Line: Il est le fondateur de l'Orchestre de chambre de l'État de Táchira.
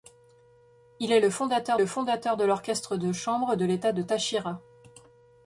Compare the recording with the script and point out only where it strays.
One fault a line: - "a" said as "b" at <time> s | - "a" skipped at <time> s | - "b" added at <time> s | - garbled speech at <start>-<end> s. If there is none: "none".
- "le fondateur" added at 1.7 s